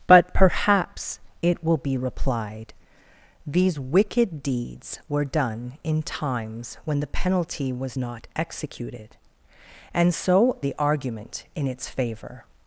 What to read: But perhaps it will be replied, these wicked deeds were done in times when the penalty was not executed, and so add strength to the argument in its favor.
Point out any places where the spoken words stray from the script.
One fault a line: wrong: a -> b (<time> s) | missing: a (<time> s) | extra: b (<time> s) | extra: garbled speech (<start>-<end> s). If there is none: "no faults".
missing: add strength to (10.6 s)